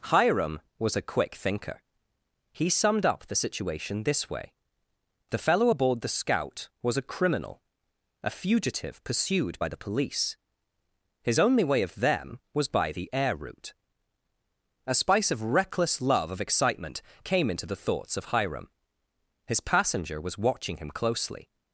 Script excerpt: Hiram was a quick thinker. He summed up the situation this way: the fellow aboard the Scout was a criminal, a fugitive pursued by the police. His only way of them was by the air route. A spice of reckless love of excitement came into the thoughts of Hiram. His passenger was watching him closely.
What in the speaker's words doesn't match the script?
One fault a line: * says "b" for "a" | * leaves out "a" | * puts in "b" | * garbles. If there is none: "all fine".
all fine